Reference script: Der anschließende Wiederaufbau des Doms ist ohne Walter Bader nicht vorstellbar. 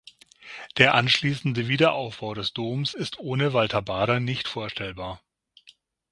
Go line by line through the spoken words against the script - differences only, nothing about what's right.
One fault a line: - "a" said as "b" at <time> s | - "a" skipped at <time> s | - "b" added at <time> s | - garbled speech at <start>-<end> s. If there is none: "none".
none